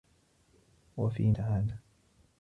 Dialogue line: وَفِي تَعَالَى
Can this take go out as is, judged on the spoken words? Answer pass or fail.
pass